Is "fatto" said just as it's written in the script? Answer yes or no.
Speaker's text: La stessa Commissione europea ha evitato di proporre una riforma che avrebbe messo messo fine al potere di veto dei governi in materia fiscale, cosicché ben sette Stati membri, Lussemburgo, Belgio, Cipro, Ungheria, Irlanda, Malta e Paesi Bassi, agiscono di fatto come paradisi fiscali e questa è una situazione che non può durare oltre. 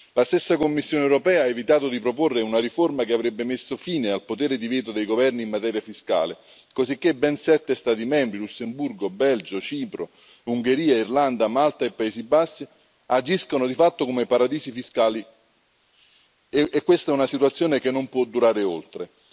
yes